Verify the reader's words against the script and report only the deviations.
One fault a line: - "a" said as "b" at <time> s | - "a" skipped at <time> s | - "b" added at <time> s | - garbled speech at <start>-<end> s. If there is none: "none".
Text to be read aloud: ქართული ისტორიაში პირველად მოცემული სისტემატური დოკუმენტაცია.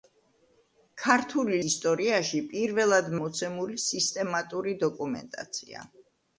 none